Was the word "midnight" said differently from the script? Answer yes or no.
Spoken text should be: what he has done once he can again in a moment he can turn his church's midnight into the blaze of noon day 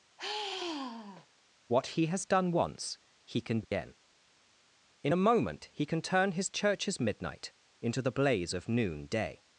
no